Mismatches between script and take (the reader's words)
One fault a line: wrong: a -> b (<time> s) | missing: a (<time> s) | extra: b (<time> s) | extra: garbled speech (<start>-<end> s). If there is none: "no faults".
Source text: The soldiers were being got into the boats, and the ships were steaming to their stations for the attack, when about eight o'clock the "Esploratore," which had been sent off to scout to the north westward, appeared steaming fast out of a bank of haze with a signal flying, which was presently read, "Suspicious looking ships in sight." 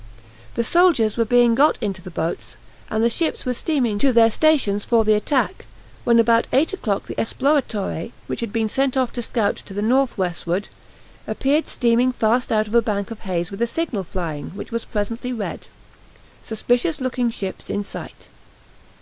no faults